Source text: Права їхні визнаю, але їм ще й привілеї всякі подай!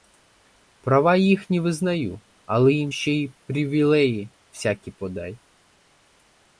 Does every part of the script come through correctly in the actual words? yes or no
yes